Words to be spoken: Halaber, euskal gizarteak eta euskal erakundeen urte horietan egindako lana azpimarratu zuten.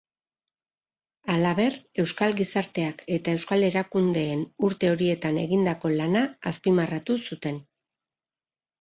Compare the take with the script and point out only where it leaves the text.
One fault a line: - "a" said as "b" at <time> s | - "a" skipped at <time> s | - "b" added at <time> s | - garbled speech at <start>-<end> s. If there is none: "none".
none